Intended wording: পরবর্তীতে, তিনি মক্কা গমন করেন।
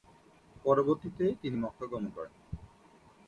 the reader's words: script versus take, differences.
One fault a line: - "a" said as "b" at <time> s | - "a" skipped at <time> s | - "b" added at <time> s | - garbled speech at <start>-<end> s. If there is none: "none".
none